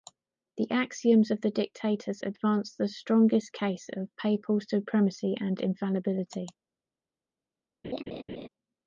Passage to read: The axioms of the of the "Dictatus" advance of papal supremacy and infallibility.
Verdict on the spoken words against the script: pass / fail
fail